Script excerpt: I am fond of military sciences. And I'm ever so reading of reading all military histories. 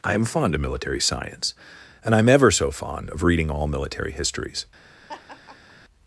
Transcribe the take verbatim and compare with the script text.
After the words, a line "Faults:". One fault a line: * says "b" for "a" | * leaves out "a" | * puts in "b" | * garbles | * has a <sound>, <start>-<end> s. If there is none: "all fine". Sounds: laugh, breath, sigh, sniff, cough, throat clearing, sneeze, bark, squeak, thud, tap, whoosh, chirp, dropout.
I am fond of military science. And I'm ever so fond of reading all military histories.
Faults:
* says "science" for "sciences"
* says "fond" for "reading"
* has a laugh, 5.1-5.7 s